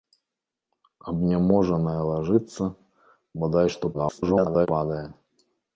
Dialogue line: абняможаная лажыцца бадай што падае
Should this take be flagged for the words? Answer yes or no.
yes